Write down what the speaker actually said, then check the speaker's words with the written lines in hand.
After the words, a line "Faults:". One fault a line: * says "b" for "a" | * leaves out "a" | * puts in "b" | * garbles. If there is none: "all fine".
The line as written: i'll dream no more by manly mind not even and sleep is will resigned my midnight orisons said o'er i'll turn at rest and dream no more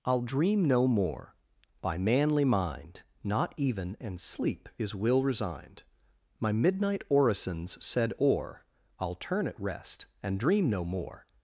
i'll dream no more by manly mind not even and sleep is will resigned my midnight orisons said o'er i'll turn at rest and dream no more
Faults:
all fine